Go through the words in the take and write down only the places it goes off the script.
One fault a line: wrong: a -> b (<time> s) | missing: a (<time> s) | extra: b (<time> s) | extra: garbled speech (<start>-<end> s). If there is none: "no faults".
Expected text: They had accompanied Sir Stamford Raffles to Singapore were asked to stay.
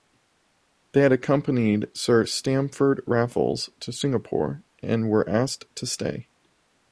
extra: and (4.8 s)